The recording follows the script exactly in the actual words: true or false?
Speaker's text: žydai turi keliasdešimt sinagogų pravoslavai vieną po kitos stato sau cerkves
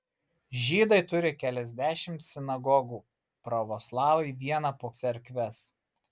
false